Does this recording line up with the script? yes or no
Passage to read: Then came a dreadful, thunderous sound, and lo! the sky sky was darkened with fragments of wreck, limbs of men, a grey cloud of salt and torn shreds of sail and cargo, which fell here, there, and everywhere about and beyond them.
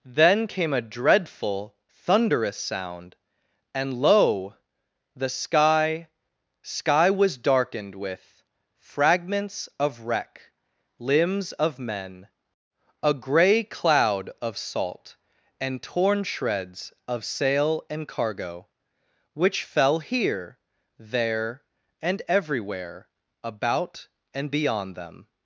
yes